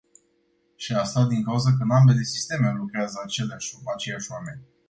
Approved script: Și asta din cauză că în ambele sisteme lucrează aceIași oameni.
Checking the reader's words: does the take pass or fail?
pass